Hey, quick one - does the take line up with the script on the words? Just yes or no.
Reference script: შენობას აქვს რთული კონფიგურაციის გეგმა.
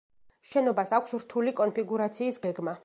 yes